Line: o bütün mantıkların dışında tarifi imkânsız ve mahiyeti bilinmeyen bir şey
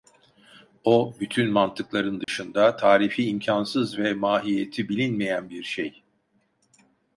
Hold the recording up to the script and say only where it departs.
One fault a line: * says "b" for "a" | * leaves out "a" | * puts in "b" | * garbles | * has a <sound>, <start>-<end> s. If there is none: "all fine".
* has a dropout, 2.2-2.3 s